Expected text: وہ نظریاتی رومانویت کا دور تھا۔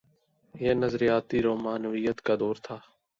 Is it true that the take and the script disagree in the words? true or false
true